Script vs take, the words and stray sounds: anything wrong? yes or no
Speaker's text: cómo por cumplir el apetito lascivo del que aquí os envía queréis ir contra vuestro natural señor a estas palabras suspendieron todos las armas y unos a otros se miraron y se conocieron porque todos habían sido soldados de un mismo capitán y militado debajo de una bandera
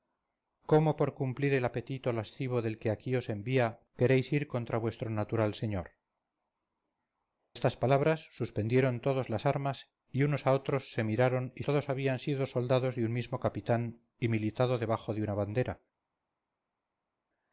yes